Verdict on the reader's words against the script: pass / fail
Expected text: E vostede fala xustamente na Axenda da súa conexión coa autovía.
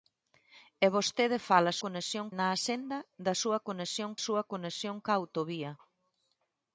fail